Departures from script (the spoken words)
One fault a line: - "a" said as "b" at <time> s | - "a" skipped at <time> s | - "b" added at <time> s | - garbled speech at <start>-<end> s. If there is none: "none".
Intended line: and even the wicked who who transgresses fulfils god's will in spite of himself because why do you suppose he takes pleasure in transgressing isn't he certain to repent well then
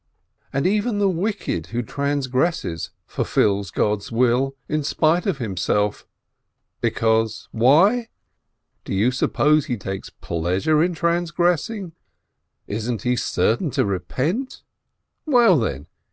- "who" skipped at 1.8 s